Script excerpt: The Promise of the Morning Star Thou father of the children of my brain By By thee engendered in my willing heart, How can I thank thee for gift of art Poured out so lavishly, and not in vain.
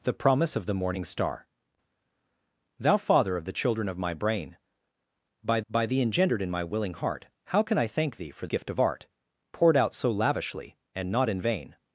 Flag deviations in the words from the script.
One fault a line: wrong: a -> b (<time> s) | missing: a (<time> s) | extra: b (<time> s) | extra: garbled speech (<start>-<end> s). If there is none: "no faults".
no faults